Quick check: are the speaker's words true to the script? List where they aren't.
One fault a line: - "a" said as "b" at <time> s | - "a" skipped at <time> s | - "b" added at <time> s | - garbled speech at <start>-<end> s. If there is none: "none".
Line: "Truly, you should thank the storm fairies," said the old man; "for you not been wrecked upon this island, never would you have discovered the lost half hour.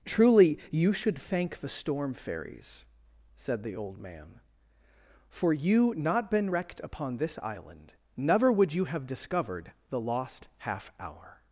none